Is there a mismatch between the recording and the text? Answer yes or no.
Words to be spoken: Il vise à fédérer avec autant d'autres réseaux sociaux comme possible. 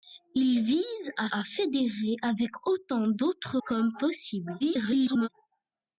yes